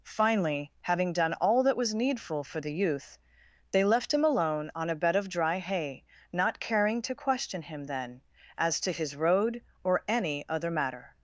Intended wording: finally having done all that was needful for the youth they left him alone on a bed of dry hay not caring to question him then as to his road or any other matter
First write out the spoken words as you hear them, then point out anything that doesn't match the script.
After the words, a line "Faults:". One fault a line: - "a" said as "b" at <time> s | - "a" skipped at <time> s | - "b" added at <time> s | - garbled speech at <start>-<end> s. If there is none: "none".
finally having done all that was needful for the youth they left him alone on a bed of dry hay not caring to question him then as to his road or any other matter
Faults:
none